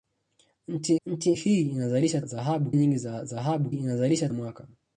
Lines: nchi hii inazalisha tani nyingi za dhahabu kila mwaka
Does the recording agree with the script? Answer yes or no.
no